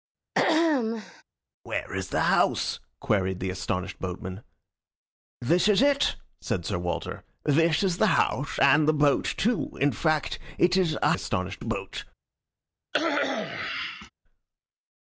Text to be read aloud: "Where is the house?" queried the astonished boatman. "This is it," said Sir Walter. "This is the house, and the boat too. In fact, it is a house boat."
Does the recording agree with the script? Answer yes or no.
no